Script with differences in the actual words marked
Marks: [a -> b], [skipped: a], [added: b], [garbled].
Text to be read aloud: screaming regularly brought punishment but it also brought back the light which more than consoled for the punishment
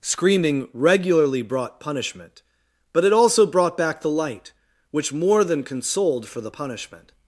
screaming regularly brought punishment but it also brought back the light which more than consoled for the punishment